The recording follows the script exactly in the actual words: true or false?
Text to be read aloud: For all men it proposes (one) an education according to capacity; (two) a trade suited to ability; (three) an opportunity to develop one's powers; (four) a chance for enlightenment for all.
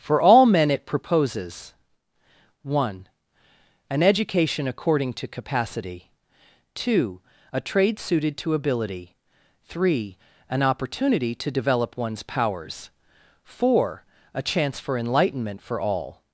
true